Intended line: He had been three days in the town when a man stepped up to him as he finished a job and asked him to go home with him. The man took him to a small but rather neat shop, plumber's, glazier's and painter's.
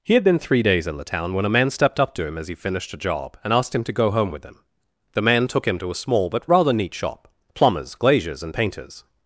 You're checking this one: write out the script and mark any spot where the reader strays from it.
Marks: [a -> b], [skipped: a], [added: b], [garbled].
He had been three days in the town when a man stepped up to him as he finished a job and asked him to go home with him. The man took him to a small but rather neat shop, plumber's, glazier's and painter's.